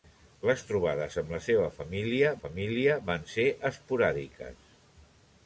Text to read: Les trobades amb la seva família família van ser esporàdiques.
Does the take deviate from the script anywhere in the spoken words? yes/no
no